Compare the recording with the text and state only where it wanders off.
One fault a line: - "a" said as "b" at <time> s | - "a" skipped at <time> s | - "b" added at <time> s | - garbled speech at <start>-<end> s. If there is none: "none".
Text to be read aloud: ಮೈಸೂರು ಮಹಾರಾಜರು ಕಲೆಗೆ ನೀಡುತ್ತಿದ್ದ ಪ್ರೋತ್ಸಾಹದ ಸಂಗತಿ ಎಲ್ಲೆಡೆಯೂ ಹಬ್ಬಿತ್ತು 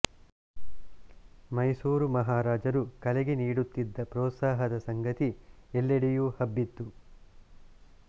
none